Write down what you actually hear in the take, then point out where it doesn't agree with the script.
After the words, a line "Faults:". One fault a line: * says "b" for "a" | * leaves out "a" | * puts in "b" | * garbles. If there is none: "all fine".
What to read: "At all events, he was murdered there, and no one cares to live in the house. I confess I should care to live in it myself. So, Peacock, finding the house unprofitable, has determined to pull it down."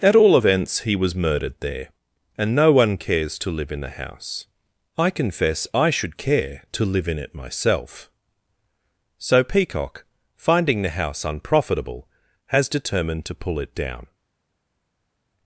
"At all events, he was murdered there, and no one cares to live in the house. I confess I should care to live in it myself. So, Peacock, finding the house unprofitable, has determined to pull it down."
Faults:
all fine